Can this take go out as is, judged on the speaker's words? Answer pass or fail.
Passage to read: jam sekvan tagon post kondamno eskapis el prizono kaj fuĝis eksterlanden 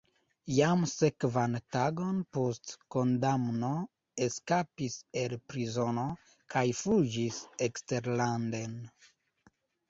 pass